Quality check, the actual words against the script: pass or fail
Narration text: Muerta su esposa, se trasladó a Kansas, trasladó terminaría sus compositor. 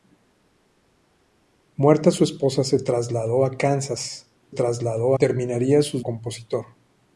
pass